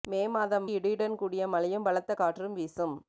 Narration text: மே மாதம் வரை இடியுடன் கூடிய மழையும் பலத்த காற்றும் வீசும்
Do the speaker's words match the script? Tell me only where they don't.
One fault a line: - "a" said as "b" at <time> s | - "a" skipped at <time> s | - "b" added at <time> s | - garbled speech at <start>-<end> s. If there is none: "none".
- "வரை" skipped at 0.7 s